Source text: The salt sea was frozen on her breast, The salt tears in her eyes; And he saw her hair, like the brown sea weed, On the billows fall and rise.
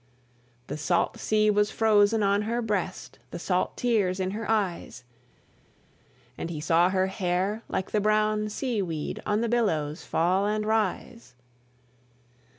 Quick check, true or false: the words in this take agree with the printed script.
true